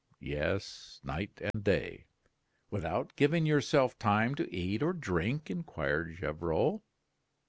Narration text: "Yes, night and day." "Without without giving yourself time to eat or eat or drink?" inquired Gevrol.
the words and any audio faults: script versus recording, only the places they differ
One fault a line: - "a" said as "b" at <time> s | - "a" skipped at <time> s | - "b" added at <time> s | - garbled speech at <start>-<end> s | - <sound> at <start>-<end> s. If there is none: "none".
- dropout at 1.5-1.5 s
- "without" skipped at 3.2 s
- "eat or" skipped at 4.9 s